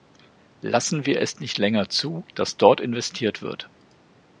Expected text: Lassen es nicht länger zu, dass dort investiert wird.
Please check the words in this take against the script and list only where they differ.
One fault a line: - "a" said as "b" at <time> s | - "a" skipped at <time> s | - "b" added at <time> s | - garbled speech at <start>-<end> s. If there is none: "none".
- "wir" added at 1.1 s